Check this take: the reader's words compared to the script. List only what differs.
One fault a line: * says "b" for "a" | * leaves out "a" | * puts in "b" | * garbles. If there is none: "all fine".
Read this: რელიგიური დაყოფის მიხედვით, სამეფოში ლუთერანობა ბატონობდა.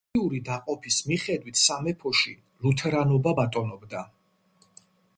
all fine